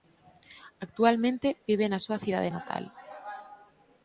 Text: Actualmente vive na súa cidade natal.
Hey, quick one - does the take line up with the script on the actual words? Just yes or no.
yes